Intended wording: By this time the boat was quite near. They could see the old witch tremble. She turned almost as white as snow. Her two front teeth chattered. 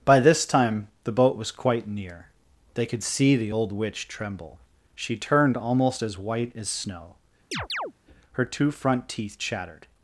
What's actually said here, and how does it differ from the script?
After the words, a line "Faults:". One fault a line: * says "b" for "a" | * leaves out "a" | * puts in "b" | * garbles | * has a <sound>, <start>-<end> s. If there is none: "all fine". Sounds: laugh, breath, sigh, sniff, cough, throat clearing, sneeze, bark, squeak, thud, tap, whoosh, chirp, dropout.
By this time the boat was quite near. They could see the old witch tremble. She turned almost as white as snow. Her two front teeth chattered.
Faults:
* has a chirp, 7.5-7.9 s